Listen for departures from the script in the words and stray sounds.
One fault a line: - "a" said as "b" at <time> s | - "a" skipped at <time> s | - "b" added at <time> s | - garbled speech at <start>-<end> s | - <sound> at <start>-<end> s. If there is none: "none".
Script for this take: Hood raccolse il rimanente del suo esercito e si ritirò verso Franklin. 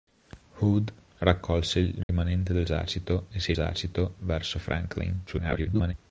- dropout at 2.0-2.1 s
- "suo" skipped at 2.7 s
- "ritirò" said as "esercito" at 3.5 s
- garbled speech at 5.3-5.9 s